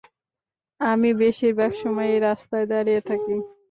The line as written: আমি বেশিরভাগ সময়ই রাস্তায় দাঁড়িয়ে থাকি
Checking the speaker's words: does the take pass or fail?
pass